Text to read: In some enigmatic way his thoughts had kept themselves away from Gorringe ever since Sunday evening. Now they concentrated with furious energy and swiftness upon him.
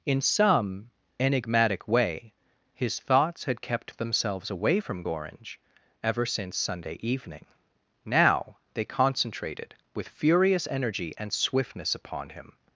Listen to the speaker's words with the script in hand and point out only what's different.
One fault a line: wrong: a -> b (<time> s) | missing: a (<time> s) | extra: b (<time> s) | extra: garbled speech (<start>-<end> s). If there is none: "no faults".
no faults